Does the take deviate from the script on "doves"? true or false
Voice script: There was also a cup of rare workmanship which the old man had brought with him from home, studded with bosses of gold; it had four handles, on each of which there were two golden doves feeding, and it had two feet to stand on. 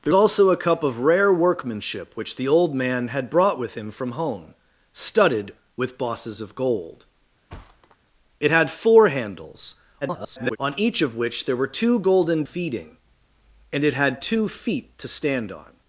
true